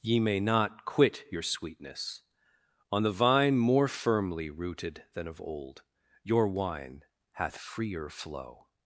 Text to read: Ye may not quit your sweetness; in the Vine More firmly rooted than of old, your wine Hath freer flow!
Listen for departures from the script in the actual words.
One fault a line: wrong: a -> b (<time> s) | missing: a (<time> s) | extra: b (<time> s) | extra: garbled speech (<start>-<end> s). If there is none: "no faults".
wrong: in -> on (2.9 s)